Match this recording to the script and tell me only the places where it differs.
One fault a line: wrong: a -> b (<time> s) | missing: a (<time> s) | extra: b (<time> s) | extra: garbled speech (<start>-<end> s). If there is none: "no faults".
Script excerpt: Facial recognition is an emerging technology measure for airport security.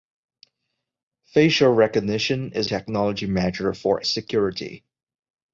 missing: an emerging (2.7 s)
missing: airport (4.0 s)